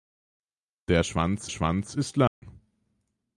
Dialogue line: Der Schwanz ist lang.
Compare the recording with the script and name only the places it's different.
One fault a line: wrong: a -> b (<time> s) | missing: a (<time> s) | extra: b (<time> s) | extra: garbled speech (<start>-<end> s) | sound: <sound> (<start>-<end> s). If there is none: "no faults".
extra: Schwanz (1.5 s)
sound: dropout (2.3-2.4 s)